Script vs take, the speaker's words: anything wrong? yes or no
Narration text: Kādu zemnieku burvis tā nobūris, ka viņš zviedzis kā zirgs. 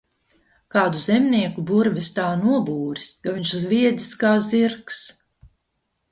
no